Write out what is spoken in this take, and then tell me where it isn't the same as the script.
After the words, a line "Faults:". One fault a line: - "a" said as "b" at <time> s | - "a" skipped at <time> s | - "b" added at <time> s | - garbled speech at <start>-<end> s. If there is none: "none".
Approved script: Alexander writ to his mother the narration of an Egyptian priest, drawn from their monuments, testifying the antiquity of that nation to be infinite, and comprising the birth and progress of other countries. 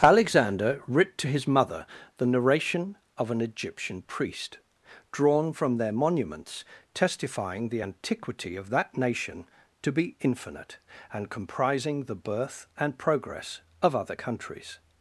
Alexander writ to his mother the narration of an Egyptian priest, drawn from their monuments, testifying the antiquity of that nation to be infinite, and comprising the birth and progress of other countries.
Faults:
none